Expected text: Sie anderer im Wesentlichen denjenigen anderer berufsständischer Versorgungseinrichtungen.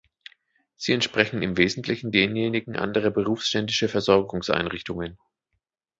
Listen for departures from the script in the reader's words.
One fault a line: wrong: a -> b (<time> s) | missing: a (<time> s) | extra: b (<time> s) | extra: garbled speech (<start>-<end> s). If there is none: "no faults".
wrong: anderer -> entsprechen (0.9 s)